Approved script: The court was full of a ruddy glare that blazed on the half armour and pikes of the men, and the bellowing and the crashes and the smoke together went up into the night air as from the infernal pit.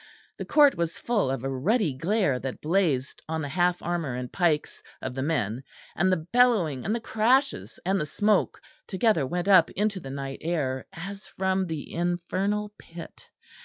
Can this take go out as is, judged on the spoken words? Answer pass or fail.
pass